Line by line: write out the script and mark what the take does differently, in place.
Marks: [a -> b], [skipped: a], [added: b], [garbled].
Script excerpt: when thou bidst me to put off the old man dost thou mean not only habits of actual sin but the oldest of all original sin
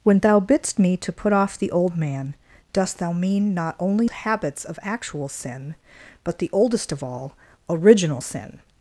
when thou bidst me to put off the old man dost thou mean not only habits of actual sin but the oldest of all original sin